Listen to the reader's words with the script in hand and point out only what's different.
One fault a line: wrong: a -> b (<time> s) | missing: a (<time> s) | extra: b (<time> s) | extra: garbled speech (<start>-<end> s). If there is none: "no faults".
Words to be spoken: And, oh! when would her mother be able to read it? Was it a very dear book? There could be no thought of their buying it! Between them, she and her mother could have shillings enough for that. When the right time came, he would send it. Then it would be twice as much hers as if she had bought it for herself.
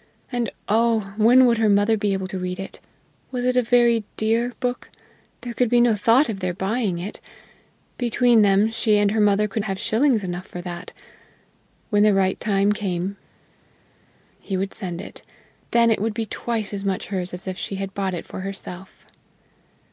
no faults